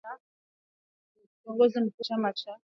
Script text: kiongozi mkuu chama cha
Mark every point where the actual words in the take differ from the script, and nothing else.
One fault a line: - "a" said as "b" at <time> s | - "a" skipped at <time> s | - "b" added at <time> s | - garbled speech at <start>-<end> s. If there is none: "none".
none